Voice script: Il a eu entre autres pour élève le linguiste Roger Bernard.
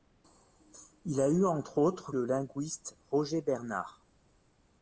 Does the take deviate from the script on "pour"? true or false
true